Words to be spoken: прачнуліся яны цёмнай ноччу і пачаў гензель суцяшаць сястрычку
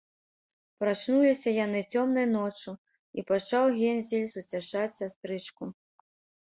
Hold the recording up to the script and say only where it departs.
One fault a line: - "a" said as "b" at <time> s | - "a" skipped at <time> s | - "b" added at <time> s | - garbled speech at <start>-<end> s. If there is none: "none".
none